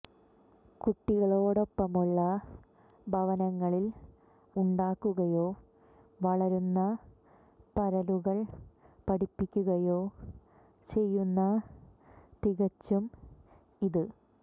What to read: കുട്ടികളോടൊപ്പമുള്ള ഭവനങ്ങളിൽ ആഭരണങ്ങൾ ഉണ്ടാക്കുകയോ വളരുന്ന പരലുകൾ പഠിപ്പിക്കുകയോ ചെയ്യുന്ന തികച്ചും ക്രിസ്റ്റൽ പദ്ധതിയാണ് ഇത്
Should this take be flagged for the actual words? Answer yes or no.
yes